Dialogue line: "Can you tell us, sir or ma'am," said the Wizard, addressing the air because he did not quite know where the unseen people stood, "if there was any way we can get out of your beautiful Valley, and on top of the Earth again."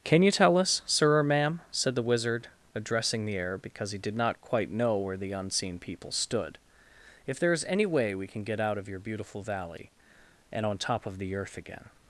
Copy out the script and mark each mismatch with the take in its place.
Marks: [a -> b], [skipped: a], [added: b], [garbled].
"Can you tell us, sir or ma'am," said the Wizard, addressing the air because he did not quite know where the unseen people stood, "if there [was -> is] any way we can get out of your beautiful Valley, and on top of the Earth again."